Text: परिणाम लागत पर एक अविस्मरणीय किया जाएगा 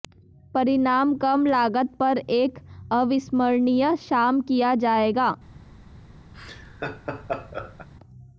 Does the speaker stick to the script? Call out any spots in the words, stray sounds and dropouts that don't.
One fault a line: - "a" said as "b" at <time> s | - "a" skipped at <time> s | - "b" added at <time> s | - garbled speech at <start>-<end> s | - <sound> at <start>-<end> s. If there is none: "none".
- "कम" added at 1.1 s
- "शाम" added at 4.0 s
- laugh at 6.3-7.9 s